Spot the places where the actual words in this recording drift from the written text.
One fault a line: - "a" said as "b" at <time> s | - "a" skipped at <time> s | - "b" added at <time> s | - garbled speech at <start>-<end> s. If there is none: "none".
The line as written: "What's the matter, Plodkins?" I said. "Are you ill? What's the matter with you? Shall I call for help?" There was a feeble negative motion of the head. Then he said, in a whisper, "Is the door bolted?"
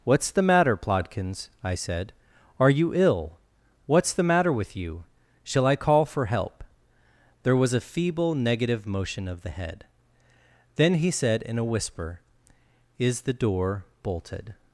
none